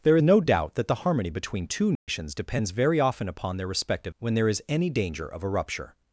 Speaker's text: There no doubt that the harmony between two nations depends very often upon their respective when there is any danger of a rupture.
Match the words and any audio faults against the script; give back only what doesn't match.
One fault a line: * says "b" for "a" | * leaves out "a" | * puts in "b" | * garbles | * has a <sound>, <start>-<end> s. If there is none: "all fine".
* has a dropout, 2.0-2.1 s